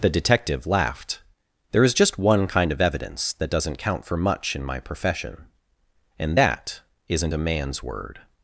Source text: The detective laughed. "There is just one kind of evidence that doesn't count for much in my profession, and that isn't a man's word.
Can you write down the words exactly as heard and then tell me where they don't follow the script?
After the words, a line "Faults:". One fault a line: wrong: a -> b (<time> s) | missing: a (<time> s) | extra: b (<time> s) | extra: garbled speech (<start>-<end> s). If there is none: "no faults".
The detective laughed. "There is just one kind of evidence that doesn't count for much in my profession, and that isn't a man's word.
Faults:
no faults